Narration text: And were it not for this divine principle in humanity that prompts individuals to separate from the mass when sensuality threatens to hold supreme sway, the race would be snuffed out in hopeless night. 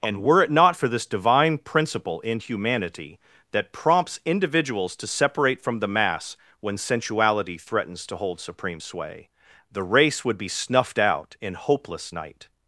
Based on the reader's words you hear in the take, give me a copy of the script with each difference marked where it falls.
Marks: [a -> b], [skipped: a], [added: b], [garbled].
And were it not for this divine principle in humanity that prompts individuals to separate from the mass when sensuality threatens to hold supreme sway, the race would be snuffed out in hopeless night.